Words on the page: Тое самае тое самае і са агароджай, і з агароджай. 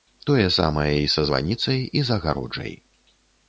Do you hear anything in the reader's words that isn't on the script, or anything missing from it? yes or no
yes